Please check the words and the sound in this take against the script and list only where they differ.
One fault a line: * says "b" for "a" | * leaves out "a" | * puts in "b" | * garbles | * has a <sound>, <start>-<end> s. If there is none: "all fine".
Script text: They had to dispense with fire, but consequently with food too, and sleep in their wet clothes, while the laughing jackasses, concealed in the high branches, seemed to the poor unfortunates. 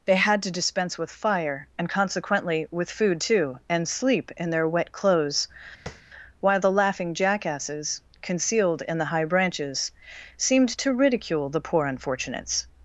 * says "and" for "but"
* has a tap, 5.9-6.0 s
* puts in "ridicule"